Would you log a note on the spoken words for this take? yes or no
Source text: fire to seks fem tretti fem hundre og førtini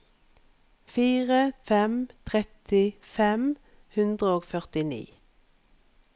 yes